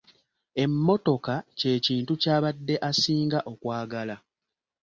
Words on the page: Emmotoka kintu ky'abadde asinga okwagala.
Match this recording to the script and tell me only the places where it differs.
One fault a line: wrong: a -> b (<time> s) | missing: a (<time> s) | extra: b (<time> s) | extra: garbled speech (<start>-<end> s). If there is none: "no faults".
extra: kye (1.6 s)